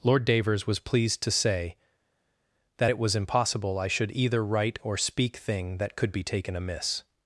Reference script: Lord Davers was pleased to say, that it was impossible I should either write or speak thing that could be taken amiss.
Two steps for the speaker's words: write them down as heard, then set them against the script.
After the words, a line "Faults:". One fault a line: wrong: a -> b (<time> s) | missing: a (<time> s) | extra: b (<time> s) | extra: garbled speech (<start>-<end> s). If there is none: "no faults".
Lord Davers was pleased to say, that it was impossible I should either write or speak thing that could be taken amiss.
Faults:
no faults